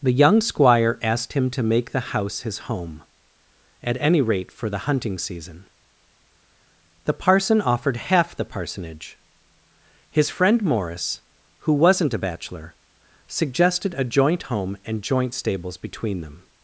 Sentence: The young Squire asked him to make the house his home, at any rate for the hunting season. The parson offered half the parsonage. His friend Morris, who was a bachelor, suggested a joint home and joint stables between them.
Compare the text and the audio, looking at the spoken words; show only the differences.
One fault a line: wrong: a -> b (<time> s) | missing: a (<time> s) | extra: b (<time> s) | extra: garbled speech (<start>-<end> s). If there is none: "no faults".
wrong: was -> wasn't (11.7 s)